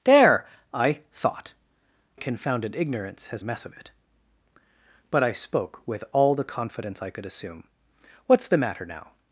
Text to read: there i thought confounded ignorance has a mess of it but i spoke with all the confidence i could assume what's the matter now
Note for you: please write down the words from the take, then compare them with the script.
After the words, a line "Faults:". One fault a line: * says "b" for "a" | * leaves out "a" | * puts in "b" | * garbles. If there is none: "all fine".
there i thought confounded ignorance has a mess of it but i spoke with all the confidence i could assume what's the matter now
Faults:
all fine